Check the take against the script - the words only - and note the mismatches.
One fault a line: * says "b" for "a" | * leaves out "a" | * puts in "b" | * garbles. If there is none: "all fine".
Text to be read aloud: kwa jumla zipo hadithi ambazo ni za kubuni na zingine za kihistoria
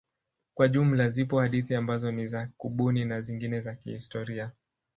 all fine